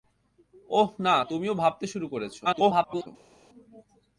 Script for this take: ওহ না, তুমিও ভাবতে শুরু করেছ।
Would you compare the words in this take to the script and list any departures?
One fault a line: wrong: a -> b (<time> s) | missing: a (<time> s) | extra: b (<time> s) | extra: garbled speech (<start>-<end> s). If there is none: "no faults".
extra: garbled speech (2.4-3.1 s)